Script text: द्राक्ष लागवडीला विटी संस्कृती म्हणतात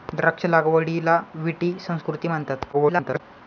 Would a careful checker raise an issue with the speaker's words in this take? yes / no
yes